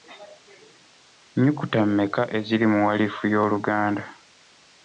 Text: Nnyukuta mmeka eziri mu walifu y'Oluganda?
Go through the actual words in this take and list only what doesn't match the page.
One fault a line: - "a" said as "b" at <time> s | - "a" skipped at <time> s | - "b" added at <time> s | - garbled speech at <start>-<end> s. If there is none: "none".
none